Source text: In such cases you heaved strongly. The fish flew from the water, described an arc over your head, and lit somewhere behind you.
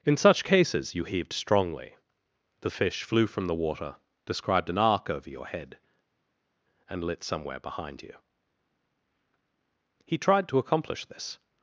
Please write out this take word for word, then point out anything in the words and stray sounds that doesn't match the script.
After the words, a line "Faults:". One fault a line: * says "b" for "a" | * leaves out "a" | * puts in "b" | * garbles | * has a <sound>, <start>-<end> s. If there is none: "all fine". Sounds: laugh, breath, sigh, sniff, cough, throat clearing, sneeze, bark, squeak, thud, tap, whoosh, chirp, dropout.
In such cases you heaved strongly. The fish flew from the water, described an arc over your head, and lit somewhere behind you. He tried to accomplish this
Faults:
* puts in "He tried to accomplish this"